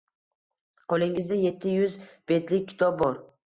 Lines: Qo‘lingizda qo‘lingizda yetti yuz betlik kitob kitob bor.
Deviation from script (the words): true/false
true